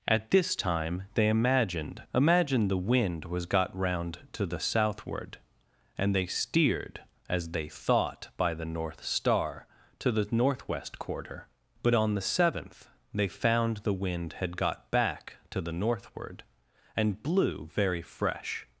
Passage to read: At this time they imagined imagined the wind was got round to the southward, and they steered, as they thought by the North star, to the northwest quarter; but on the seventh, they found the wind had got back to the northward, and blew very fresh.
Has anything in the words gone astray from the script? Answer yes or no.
no